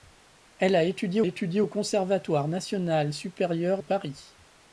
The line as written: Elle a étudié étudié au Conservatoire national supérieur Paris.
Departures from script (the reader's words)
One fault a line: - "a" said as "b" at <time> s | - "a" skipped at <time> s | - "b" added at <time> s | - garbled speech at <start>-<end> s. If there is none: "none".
none